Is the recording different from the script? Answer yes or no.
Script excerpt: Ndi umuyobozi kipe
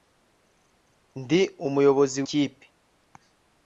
no